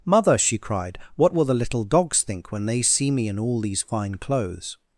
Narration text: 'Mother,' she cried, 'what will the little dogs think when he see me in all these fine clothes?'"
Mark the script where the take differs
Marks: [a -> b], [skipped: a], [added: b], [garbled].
'Mother,' she cried, 'what will the little dogs think when [he -> they] see me in all these fine clothes?'"